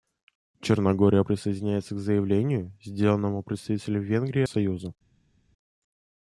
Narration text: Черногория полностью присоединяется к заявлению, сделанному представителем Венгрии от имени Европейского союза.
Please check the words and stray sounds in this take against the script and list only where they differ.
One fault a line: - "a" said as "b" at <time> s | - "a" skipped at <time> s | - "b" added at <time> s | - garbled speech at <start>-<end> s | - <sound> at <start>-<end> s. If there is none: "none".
- "полностью" skipped at 1.2 s
- "от имени Европейского" skipped at 4.4 s